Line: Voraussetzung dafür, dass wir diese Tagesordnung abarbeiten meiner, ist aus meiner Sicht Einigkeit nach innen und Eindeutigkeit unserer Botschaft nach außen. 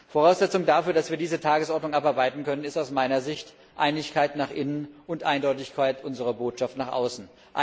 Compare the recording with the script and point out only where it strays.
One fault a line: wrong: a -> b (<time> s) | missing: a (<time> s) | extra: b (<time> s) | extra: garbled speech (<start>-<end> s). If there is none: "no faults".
wrong: meiner -> können (2.4 s)